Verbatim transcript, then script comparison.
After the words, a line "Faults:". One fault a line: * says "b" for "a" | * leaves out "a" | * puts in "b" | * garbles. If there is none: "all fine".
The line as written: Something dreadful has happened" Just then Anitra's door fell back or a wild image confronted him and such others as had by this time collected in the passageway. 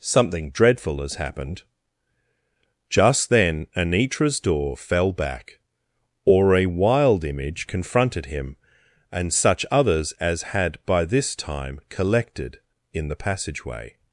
Something dreadful has happened" Just then Anitra's door fell back or a wild image confronted him and such others as had by this time collected in the passageway.
Faults:
all fine